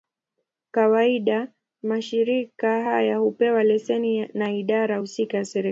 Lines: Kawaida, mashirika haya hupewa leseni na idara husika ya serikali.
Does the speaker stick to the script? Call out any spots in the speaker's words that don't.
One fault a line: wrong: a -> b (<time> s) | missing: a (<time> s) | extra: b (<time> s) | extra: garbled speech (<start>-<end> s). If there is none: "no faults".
no faults